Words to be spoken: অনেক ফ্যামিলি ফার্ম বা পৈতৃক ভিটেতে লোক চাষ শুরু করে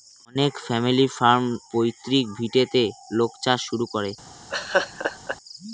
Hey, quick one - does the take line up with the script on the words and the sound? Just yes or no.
no